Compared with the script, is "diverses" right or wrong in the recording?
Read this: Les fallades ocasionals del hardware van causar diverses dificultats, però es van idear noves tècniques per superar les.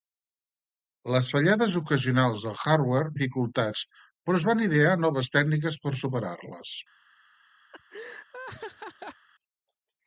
wrong